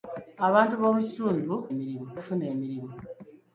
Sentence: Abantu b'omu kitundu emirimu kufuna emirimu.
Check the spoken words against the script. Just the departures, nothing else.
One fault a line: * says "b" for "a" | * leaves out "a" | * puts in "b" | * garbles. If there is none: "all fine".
all fine